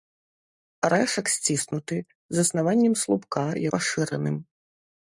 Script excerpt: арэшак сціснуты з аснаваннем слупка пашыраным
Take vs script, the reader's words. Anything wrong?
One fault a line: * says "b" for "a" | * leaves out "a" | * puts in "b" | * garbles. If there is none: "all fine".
all fine